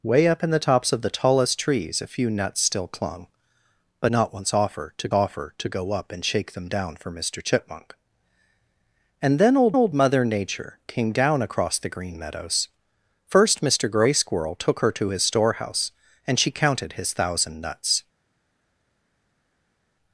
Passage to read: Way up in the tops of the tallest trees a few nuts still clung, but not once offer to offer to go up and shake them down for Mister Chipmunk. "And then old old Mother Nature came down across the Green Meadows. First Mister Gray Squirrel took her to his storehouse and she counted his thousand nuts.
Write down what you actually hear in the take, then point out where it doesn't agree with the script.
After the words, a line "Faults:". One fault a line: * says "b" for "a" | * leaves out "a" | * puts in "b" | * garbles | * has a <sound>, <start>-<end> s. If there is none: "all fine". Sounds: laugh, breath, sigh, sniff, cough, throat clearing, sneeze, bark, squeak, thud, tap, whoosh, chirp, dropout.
Way up in the tops of the tallest trees a few nuts still clung, but not once offer to offer to go up and shake them down for Mister Chipmunk. "And then old old Mother Nature came down across the Green Meadows. First Mister Gray Squirrel took her to his storehouse and she counted his thousand nuts.
Faults:
all fine